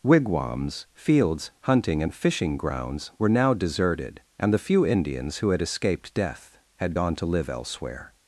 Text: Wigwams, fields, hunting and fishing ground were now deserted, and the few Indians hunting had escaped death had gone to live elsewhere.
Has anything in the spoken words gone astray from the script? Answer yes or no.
yes